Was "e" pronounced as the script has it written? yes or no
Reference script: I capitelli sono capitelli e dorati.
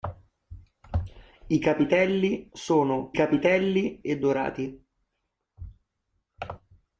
yes